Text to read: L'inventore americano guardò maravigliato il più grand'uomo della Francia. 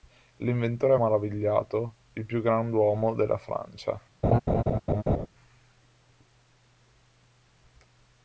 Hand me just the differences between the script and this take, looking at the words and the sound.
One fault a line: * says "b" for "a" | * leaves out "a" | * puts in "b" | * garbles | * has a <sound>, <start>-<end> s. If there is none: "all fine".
* leaves out "americano guardò"
* has a laugh, 4.2-5.3 s